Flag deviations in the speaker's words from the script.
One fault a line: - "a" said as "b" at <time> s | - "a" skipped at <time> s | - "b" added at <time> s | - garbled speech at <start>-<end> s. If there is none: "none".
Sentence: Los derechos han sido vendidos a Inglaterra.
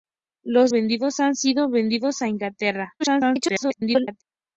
- "derechos" said as "vendidos" at 0.7 s
- garbled speech at 3.0-4.2 s